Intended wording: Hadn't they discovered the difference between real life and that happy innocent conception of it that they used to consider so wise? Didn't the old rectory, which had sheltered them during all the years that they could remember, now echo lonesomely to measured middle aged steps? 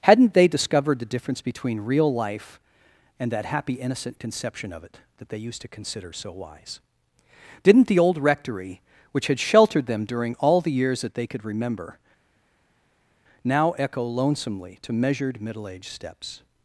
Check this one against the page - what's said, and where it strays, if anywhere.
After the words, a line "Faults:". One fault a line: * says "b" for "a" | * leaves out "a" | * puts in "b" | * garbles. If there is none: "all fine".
Hadn't they discovered the difference between real life and that happy innocent conception of it that they used to consider so wise? Didn't the old rectory, which had sheltered them during all the years that they could remember, now echo lonesomely to measured middle aged steps?
Faults:
all fine